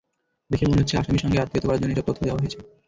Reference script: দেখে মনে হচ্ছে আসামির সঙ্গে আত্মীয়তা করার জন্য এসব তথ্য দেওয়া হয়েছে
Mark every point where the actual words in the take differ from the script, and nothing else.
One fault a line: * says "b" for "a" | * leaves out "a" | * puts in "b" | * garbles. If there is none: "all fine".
all fine